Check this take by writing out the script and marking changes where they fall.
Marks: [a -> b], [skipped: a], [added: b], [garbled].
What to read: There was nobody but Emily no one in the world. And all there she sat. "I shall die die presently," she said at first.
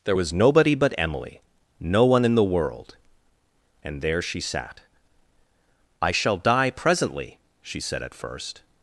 There was nobody but Emily no one in the world. And [skipped: all] there she sat. "I shall die [skipped: die] presently," she said at first.